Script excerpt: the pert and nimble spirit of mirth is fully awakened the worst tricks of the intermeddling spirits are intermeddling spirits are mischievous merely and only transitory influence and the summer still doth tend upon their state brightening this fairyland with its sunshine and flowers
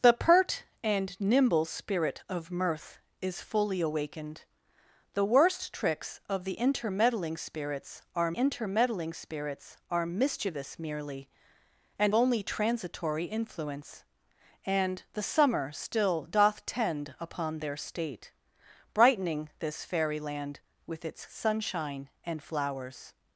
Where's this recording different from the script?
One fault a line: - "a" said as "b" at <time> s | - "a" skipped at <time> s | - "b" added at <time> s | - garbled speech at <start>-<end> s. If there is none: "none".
none